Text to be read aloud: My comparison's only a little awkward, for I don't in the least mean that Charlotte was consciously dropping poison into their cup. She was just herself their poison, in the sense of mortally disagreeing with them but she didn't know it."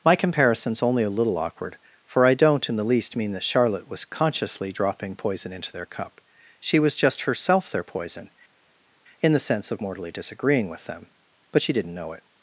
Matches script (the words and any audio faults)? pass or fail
pass